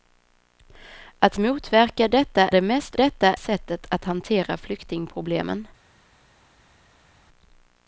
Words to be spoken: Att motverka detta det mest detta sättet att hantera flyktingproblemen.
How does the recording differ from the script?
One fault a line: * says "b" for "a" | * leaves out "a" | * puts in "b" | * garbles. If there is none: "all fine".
all fine